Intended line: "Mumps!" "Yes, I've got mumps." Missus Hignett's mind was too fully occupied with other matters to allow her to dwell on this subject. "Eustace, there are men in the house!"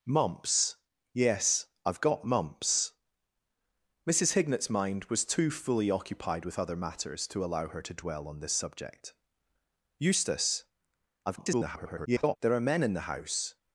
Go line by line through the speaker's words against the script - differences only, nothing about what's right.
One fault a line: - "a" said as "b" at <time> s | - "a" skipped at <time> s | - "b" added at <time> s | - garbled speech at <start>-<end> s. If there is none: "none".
- garbled speech at 11.3-12.4 s